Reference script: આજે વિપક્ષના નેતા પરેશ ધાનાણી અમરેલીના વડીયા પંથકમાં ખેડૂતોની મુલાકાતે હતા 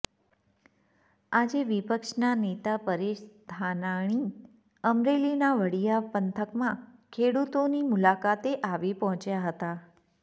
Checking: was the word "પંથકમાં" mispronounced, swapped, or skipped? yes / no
no